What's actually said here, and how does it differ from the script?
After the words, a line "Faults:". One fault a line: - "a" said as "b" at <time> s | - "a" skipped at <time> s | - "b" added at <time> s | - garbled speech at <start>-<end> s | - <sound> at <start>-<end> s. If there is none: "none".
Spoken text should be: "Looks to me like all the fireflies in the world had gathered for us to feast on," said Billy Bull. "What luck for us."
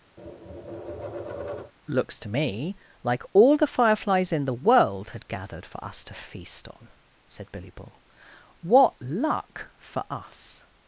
"Looks to me like all the fireflies in the world had gathered for us to feast on," said Billy Bull. "What luck for us."
Faults:
- tap at 0.2-1.7 s